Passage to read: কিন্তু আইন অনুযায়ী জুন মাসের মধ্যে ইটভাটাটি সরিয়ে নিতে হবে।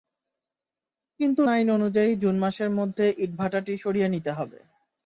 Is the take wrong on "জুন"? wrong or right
right